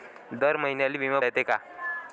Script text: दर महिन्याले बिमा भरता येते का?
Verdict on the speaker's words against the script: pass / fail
fail